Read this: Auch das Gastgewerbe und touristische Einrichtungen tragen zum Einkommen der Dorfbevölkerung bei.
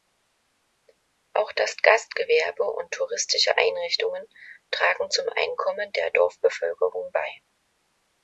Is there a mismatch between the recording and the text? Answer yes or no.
no